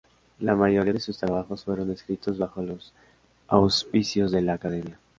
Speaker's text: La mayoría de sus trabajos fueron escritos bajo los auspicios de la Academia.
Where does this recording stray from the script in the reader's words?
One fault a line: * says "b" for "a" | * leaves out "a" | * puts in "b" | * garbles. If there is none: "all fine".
all fine